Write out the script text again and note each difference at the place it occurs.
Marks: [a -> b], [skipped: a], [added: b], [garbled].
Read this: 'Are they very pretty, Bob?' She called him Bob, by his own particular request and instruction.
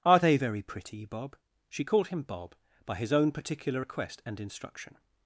'Are they very pretty, Bob?' She called him Bob, by his own particular request and instruction.